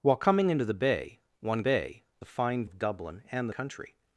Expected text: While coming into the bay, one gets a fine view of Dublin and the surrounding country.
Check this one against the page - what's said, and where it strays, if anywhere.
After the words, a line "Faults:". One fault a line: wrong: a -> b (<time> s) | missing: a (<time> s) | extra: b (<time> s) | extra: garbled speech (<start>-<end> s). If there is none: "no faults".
While coming into the bay, one bay a fine of Dublin and the country.
Faults:
wrong: gets -> bay (1.6 s)
missing: view (2.7 s)
missing: surrounding (3.5 s)